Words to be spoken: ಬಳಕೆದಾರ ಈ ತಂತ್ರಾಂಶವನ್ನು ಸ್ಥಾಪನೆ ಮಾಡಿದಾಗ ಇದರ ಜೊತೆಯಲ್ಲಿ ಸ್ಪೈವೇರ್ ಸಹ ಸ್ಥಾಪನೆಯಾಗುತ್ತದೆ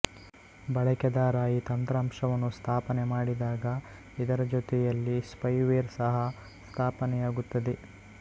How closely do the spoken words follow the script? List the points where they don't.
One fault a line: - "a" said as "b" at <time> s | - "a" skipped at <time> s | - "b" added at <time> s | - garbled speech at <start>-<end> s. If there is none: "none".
none